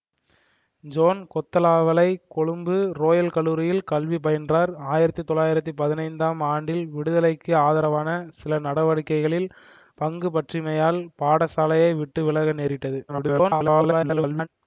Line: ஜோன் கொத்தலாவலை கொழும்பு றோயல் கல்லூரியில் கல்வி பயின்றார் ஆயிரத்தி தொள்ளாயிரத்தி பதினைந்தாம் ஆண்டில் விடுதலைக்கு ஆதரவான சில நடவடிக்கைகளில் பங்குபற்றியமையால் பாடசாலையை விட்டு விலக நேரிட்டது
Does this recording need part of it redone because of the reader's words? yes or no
yes